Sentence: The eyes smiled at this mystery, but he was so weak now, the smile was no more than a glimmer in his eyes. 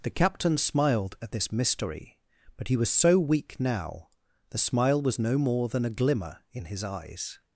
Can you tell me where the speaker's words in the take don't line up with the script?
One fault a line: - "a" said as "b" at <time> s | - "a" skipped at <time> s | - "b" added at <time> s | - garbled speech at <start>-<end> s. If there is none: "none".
- "eyes" said as "captain" at 0.1 s